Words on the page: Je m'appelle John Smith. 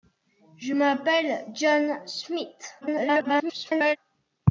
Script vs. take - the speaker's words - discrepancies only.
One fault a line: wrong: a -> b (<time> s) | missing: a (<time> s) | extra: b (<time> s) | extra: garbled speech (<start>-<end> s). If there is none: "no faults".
extra: garbled speech (2.8-4.0 s)